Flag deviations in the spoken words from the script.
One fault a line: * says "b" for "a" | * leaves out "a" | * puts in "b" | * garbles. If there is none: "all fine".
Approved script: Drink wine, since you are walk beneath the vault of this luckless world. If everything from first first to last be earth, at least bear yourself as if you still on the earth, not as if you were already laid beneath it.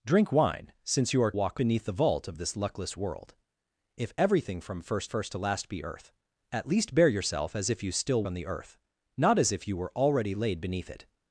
all fine